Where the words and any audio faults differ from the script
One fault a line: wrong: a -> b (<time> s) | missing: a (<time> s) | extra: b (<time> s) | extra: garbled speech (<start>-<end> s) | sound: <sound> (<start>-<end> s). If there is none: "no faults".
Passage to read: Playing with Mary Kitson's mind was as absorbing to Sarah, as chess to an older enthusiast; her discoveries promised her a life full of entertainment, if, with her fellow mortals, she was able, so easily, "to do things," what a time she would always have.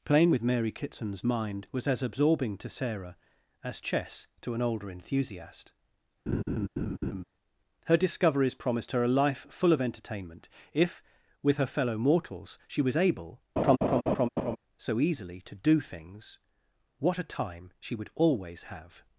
sound: laugh (6.3-7.2 s)
sound: laugh (13.6-14.6 s)